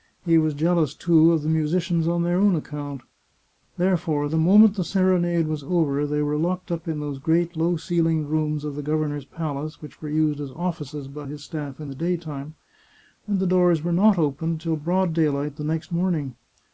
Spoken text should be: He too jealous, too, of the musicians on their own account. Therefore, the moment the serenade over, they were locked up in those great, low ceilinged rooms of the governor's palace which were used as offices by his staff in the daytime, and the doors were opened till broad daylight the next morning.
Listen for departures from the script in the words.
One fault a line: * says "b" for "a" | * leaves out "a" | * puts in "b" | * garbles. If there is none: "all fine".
* says "was" for "too"
* puts in "was"
* puts in "not"